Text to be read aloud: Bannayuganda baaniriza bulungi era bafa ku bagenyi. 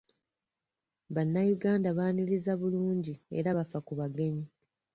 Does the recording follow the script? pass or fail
pass